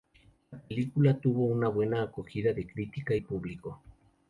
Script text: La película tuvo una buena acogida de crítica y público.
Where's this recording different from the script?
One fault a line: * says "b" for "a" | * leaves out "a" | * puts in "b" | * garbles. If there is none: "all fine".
all fine